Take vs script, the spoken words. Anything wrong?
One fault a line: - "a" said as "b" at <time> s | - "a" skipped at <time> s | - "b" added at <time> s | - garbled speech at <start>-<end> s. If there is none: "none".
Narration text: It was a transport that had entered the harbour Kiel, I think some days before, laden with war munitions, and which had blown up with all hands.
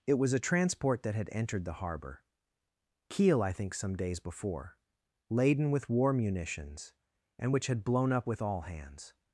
none